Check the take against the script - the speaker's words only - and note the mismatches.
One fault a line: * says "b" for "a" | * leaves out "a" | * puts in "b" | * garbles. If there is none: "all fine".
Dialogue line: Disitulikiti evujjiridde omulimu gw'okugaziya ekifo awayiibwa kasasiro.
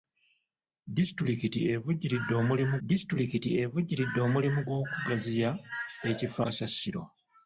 * puts in "disitulikiti evujjiridde omulimu"
* leaves out "awayiibwa"